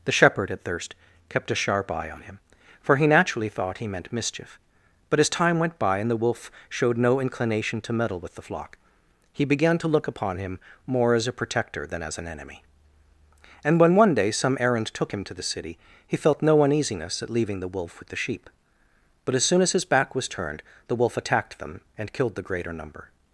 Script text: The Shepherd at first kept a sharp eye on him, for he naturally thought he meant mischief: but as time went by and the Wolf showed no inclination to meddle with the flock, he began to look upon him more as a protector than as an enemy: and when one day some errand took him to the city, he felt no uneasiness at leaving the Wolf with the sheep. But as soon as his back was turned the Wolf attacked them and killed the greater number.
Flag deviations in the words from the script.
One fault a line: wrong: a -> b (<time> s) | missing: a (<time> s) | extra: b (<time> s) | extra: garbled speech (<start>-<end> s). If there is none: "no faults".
wrong: first -> thirst (0.6 s)